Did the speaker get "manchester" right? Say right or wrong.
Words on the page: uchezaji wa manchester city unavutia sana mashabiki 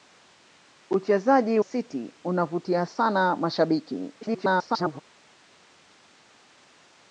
wrong